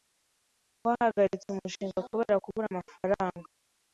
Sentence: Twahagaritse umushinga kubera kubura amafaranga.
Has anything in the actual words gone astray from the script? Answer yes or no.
no